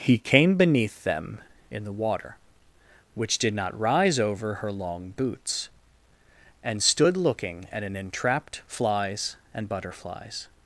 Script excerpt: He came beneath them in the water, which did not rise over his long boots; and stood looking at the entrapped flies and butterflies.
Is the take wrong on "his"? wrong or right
wrong